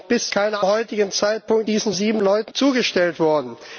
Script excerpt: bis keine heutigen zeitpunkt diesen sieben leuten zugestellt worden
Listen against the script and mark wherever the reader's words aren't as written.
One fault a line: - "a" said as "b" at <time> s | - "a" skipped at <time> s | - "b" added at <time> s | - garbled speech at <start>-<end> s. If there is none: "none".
none